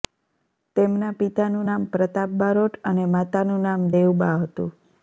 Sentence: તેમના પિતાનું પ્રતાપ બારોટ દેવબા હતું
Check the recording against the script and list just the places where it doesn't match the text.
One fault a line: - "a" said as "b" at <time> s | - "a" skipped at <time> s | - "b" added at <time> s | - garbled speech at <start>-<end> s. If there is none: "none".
- "નામ" added at 1.7 s
- "અને માતાનું નામ" added at 2.9 s